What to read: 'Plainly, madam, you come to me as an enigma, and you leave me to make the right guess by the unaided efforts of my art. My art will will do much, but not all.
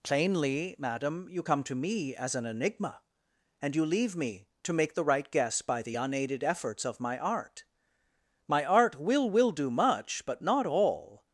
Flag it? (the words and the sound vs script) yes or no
no